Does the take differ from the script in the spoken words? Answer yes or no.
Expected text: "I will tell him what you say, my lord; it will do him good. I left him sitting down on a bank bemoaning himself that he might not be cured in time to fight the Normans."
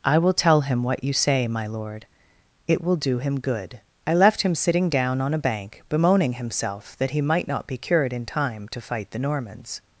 no